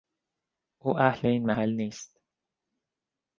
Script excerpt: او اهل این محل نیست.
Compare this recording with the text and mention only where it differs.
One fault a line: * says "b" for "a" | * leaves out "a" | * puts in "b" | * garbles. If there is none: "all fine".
all fine